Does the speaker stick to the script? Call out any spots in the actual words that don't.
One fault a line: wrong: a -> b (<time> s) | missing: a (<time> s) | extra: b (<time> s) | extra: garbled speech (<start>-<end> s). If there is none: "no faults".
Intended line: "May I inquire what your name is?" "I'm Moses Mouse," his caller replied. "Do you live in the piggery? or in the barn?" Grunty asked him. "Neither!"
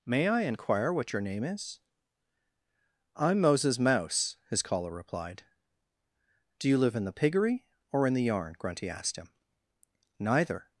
wrong: barn -> yarn (8.2 s)